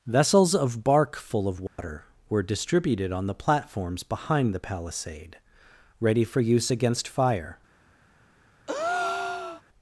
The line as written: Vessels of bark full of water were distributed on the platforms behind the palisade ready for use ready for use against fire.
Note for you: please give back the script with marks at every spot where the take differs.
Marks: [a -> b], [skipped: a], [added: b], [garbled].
Vessels of bark full of water were distributed on the platforms behind the palisade ready for use [skipped: ready for use] against fire.